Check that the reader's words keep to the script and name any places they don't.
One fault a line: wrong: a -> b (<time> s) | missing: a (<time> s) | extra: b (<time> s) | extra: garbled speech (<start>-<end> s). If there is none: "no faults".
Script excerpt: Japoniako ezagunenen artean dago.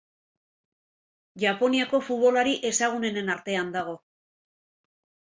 extra: futbolari (2.1 s)